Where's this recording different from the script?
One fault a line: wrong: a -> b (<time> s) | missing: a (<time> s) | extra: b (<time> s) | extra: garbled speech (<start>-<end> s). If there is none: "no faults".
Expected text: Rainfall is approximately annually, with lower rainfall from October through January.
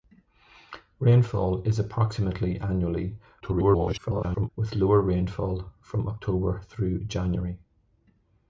extra: garbled speech (3.4-4.5 s)